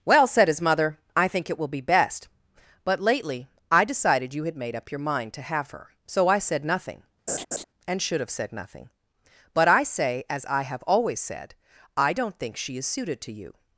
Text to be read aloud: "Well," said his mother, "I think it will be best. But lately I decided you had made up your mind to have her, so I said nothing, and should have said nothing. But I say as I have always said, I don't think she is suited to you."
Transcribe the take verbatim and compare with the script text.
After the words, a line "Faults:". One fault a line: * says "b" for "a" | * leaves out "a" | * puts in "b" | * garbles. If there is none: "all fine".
"Well," said his mother, "I think it will be best. But lately I decided you had made up your mind to have her, so I said nothing, and should have said nothing. But I say as I have always said, I don't think she is suited to you."
Faults:
all fine